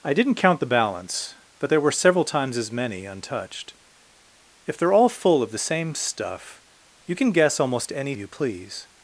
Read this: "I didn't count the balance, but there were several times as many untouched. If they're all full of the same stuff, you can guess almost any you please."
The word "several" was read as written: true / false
true